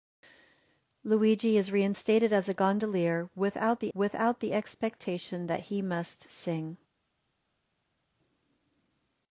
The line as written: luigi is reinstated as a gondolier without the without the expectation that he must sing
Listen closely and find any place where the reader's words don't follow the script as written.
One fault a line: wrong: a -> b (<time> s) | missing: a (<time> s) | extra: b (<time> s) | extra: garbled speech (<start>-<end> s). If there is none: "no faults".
no faults